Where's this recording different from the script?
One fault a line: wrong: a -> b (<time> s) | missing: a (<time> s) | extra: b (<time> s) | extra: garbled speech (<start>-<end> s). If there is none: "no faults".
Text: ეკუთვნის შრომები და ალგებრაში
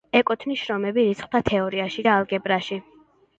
extra: რიცხვთა თეორიაში (1.1 s)